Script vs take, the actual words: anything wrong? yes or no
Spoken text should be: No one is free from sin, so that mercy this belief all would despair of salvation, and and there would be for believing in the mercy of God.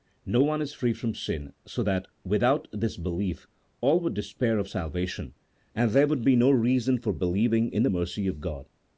yes